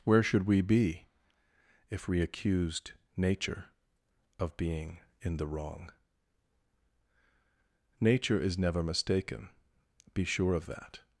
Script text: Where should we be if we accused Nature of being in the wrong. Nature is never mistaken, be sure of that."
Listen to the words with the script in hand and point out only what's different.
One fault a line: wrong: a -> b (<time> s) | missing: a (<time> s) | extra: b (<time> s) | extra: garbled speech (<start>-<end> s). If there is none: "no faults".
no faults